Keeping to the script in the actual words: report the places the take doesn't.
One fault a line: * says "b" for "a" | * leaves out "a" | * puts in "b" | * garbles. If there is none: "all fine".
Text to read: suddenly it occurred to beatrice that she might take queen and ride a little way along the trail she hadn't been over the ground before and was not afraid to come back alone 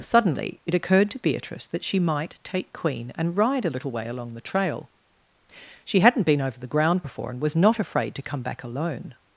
all fine